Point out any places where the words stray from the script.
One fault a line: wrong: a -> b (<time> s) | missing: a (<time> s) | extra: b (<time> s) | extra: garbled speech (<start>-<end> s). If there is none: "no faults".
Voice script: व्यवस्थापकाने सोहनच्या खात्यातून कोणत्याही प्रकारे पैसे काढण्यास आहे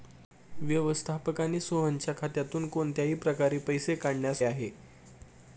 no faults